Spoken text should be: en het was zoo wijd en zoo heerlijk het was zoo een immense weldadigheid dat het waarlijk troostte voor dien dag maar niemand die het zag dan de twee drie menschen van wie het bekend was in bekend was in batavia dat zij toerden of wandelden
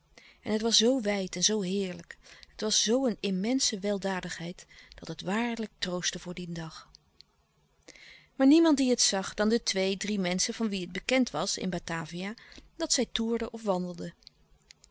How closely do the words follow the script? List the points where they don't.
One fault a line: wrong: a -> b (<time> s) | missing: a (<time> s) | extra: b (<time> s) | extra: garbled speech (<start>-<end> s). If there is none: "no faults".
missing: bekend was in (11.7 s)